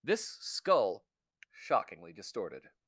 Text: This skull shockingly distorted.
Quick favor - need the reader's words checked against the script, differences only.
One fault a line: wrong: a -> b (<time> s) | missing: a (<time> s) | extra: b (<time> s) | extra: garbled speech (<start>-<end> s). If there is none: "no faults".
no faults